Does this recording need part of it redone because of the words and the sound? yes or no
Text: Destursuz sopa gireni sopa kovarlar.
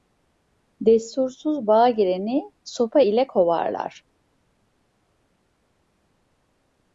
yes